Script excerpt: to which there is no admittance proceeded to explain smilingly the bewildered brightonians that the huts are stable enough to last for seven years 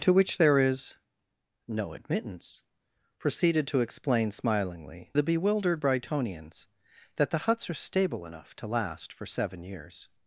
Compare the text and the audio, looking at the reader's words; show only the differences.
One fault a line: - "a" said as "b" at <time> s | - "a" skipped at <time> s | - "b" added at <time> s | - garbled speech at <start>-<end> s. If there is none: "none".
none